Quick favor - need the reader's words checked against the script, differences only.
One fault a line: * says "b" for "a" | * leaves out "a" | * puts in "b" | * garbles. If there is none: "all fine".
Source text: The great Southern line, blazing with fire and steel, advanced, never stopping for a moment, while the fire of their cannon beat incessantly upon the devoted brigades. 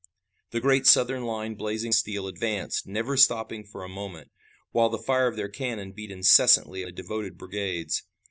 * leaves out "with fire and"
* leaves out "upon"